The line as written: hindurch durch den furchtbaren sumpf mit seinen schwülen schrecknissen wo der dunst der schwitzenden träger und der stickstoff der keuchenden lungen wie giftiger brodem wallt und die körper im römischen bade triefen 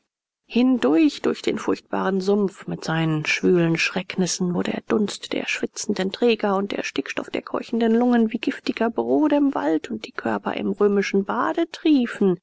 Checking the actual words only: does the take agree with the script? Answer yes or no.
yes